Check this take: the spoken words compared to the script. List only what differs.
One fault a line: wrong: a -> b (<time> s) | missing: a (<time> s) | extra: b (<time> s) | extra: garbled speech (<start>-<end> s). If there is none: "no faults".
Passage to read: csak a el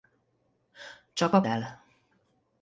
no faults